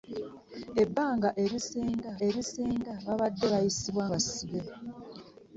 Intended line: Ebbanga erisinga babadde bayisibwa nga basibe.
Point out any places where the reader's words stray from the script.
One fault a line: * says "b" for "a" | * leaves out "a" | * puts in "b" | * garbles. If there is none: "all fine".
* puts in "erisinga"
* leaves out "nga"